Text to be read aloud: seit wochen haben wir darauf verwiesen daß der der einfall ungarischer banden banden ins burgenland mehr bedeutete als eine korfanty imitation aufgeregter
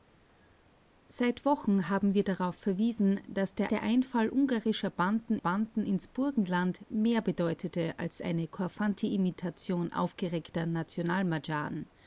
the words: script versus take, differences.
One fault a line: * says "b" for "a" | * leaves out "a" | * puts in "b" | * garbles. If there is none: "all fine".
all fine